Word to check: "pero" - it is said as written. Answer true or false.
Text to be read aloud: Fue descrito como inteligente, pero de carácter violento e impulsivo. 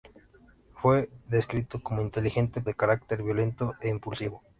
false